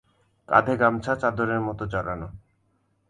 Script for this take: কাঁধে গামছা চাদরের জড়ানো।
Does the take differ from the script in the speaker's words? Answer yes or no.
yes